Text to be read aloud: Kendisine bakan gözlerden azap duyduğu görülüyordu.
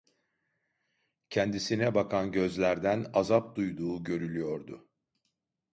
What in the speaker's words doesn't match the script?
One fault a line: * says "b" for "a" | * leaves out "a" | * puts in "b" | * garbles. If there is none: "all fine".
all fine